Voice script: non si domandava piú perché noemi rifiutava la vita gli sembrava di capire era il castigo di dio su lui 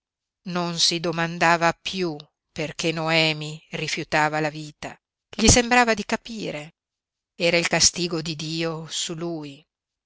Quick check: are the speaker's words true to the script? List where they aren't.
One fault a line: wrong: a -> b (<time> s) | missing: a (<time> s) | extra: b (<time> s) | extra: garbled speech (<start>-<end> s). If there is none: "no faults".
no faults